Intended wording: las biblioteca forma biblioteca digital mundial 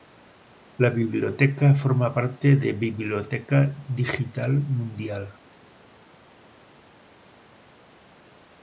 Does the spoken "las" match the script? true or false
false